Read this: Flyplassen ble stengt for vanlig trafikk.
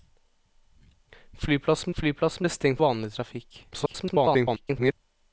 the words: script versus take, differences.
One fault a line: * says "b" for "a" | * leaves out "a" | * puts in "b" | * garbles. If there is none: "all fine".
* puts in "flyplassen"
* leaves out "for"
* garbles